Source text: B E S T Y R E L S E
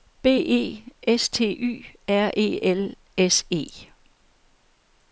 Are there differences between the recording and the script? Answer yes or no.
no